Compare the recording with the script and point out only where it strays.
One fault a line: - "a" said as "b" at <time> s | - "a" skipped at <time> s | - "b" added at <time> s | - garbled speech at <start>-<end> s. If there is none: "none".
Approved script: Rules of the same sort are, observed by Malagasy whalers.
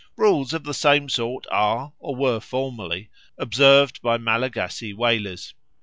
- "or were formerly" added at 2.0 s